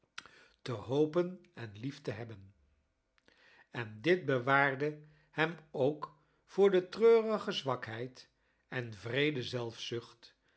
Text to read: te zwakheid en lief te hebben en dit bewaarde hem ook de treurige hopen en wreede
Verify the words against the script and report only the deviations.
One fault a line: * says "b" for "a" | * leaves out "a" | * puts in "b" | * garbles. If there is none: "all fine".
* says "hopen" for "zwakheid"
* puts in "voor"
* says "zwakheid" for "hopen"